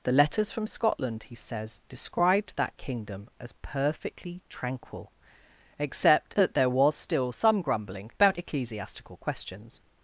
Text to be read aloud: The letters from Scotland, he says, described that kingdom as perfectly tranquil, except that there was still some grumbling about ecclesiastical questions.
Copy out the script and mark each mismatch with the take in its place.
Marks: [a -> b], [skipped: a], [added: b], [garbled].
The letters from Scotland, he says, described that kingdom as perfectly tranquil, except that there was still some grumbling about ecclesiastical questions.